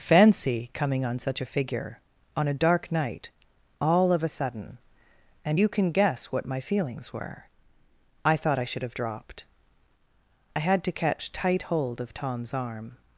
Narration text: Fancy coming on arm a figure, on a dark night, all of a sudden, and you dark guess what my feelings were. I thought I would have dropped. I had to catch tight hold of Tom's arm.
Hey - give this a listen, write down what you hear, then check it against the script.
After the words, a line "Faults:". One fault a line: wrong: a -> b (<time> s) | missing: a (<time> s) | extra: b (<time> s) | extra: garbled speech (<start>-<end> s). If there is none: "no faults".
Fancy coming on such a figure, on a dark night, all of a sudden, and you can guess what my feelings were. I thought I should have dropped. I had to catch tight hold of Tom's arm.
Faults:
wrong: arm -> such (1.2 s)
wrong: dark -> can (5.7 s)
wrong: would -> should (8.7 s)